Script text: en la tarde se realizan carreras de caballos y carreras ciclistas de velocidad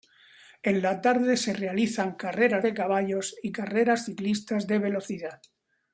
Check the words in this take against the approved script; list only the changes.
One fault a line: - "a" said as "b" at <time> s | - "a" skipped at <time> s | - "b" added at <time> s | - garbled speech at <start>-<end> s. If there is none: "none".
none